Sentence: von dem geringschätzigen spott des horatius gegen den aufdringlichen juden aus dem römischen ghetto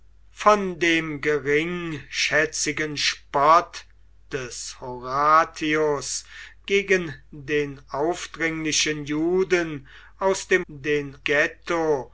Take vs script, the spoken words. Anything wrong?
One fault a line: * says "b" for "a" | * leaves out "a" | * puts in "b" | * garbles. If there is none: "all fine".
* says "den" for "römischen"